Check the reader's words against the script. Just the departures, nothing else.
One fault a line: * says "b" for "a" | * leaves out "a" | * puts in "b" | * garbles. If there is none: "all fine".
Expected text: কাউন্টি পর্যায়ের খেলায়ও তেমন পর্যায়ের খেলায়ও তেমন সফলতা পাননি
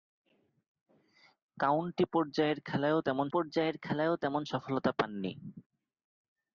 all fine